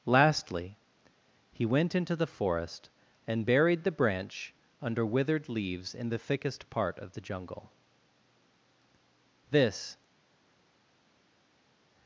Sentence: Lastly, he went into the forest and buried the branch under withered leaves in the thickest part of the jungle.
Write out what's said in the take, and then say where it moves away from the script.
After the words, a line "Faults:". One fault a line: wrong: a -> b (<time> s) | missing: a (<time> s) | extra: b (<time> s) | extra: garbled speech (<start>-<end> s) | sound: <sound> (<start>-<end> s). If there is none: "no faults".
Lastly, he went into the forest and buried the branch under withered leaves in the thickest part of the jungle. This
Faults:
extra: This (9.5 s)